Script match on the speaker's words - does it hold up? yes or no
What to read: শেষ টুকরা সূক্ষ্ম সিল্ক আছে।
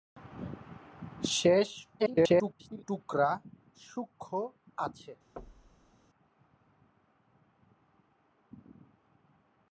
no